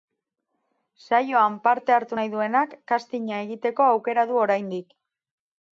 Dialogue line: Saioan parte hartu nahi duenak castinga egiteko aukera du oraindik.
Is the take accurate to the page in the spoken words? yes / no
yes